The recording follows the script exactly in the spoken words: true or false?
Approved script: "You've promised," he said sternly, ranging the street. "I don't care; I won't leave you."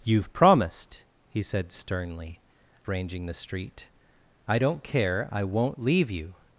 true